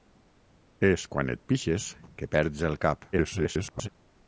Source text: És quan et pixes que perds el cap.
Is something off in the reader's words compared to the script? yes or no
yes